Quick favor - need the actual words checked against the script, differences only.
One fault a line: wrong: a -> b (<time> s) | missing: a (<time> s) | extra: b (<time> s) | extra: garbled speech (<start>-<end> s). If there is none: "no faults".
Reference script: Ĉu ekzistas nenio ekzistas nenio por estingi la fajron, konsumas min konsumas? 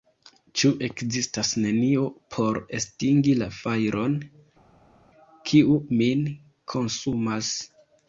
missing: ekzistas nenio (2.0 s)
wrong: konsumas -> kiu (5.5 s)